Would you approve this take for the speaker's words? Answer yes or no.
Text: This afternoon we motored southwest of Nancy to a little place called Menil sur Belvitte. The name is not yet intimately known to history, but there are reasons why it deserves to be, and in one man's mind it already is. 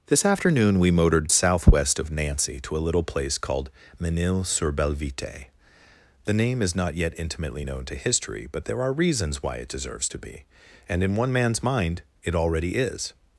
yes